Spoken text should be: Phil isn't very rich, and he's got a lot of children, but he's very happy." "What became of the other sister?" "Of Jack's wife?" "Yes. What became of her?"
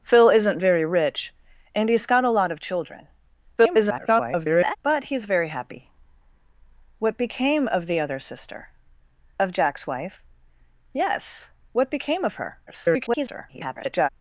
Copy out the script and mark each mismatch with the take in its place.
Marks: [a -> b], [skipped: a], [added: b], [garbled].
Phil isn't very rich, and he's got a lot of children, [garbled] but he's very happy." "What became of the other sister?" "Of Jack's wife?" "Yes. What became of her?" [garbled]